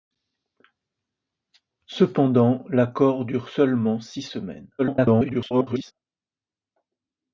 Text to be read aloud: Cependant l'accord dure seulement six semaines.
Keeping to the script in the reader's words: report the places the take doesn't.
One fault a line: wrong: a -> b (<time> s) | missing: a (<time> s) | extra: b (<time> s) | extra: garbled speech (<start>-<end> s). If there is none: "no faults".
extra: garbled speech (4.8-5.9 s)